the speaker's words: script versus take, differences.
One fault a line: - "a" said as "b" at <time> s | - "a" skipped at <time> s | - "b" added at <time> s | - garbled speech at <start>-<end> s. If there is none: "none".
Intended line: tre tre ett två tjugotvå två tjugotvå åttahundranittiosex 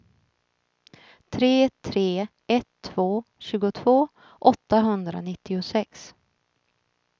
- "två tjugotvå" skipped at 4.1 s